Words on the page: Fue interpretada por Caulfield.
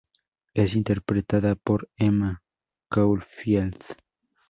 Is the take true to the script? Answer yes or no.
no